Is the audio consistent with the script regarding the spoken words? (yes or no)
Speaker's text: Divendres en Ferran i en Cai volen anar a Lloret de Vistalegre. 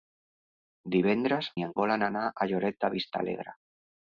no